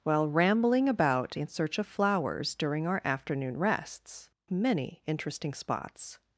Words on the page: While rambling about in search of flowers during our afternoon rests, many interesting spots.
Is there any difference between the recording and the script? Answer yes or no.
no